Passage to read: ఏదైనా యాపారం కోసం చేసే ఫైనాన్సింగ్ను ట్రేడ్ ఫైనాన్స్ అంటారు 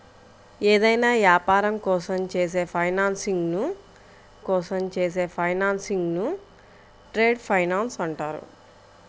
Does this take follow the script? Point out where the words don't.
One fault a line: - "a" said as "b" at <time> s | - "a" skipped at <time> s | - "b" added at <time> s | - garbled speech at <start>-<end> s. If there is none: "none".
- "కోసం చేసే ఫైనాన్సింగ్ను" added at 4.4 s